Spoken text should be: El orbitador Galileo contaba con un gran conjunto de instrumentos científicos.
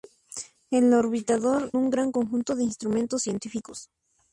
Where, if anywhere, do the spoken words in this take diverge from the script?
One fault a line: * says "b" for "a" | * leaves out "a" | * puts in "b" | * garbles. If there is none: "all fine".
* leaves out "Galileo contaba con"